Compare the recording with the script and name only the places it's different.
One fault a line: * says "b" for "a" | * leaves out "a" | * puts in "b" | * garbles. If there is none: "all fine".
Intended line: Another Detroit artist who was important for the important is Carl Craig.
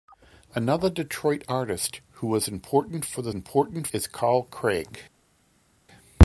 all fine